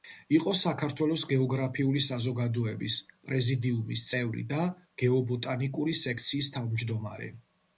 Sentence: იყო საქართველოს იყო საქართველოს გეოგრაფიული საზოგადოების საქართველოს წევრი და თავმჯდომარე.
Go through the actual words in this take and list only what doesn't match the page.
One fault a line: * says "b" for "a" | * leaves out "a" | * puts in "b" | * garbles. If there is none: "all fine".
* leaves out "იყო საქართველოს"
* says "პრეზიდიუმის" for "საქართველოს"
* puts in "გეობოტანიკური სექციის"